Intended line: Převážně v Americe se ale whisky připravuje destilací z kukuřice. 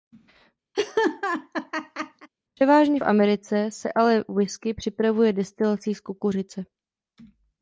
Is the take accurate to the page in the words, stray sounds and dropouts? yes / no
no